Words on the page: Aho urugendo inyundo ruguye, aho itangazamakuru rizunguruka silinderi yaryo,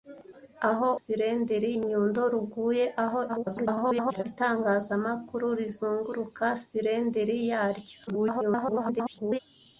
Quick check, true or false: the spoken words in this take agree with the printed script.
false